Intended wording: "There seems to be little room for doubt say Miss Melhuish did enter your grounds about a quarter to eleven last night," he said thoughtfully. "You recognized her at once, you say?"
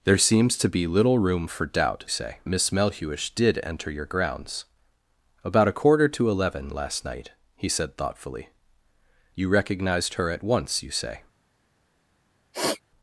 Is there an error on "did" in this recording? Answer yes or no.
no